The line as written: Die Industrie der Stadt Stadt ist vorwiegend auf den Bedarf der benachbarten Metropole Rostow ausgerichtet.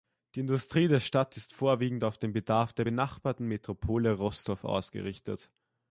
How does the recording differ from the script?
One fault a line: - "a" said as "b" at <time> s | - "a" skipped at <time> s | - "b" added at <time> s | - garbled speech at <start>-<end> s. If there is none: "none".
- "Stadt" skipped at 1.4 s